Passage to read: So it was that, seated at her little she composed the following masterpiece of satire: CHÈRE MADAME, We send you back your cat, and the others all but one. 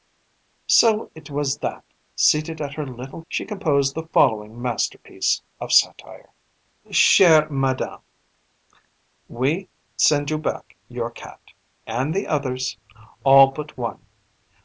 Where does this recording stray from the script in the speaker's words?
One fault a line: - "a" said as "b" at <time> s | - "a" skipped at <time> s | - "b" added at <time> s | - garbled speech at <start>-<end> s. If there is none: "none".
none